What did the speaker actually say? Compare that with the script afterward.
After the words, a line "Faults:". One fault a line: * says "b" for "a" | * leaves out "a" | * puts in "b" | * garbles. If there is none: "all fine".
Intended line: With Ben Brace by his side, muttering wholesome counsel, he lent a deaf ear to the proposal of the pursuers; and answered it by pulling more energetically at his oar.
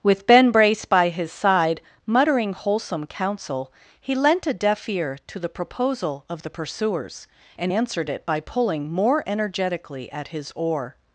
With Ben Brace by his side, muttering wholesome counsel, he lent a deaf ear to the proposal of the pursuers; and answered it by pulling more energetically at his oar.
Faults:
all fine